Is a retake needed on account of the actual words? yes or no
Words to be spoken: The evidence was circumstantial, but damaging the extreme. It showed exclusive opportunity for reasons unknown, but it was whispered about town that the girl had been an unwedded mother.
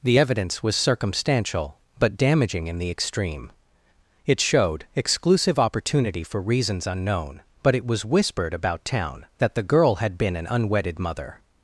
yes